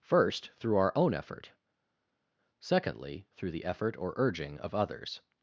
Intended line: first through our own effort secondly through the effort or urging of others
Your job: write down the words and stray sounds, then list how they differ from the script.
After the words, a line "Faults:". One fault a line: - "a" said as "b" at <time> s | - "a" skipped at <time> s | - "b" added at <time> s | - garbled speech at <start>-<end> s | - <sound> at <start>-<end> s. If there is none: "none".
first through our own effort secondly through the effort or urging of others
Faults:
none